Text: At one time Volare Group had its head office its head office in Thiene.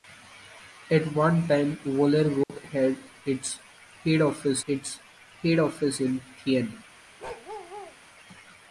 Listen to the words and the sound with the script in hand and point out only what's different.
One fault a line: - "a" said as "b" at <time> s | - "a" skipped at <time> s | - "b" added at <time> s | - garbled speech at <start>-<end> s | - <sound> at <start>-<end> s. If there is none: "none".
- dropout at 2.4-2.5 s
- bark at 7.2-8.0 s